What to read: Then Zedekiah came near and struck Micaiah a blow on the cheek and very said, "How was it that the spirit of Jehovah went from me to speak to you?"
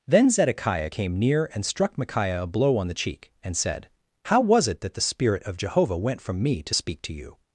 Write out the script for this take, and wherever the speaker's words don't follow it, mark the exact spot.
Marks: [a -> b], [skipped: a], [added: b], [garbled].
Then Zedekiah came near and struck Micaiah a blow on the cheek and [skipped: very] said, "How was it that the spirit of Jehovah went from me to speak to you?"